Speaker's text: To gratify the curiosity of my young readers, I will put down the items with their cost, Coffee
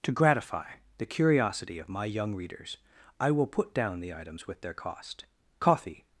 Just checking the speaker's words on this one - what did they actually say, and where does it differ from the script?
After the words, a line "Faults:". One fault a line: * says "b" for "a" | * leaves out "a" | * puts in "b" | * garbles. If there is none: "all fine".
To gratify the curiosity of my young readers, I will put down the items with their cost, Coffee
Faults:
all fine